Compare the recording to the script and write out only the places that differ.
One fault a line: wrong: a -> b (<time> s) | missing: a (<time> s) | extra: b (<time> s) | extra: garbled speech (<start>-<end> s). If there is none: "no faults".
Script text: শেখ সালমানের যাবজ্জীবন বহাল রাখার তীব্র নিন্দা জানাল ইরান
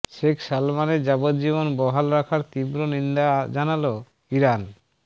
no faults